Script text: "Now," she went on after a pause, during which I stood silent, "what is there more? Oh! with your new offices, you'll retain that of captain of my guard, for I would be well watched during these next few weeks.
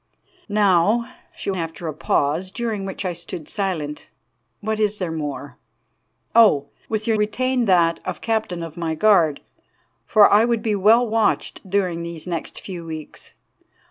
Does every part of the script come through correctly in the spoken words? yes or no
no